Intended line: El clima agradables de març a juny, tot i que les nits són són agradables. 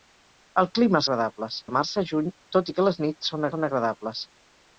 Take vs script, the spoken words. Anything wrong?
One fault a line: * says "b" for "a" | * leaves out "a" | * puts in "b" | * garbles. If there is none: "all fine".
all fine